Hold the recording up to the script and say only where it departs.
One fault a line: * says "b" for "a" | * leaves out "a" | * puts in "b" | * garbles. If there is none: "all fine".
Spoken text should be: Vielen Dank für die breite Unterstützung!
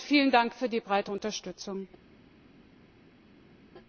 all fine